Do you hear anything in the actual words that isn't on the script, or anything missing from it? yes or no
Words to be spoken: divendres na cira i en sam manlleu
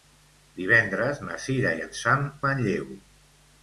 no